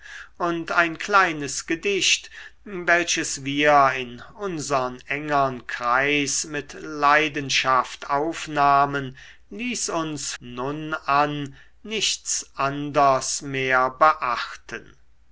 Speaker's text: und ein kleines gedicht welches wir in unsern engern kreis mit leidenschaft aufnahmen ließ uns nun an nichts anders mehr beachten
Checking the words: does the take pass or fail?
pass